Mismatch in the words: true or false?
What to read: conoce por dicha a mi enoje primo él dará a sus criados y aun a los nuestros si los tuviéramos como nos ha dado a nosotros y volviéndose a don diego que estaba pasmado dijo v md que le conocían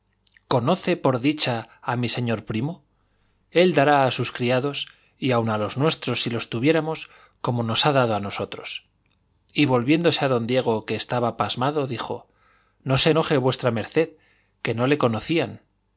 true